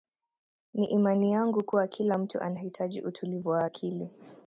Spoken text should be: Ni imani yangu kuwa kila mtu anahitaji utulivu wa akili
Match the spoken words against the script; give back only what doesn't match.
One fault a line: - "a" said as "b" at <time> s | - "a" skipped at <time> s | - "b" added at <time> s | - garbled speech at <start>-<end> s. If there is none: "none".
none